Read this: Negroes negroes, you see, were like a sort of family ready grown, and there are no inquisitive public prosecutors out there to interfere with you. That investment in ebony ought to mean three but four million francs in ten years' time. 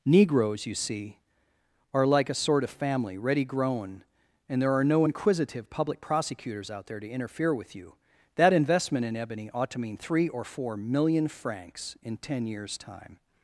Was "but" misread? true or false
true